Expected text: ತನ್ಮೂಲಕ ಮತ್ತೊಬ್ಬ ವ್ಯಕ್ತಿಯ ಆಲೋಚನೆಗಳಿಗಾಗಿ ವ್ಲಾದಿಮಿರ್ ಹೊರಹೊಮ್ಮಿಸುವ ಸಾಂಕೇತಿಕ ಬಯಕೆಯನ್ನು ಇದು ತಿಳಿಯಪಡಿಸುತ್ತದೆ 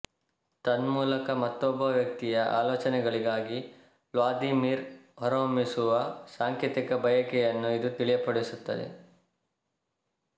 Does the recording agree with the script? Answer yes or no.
yes